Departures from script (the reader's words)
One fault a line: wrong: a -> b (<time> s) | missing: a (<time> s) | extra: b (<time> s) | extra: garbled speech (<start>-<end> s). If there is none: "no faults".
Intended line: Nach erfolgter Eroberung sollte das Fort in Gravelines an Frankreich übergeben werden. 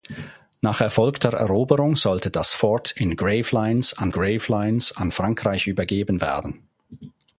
extra: Gravelines an (4.1 s)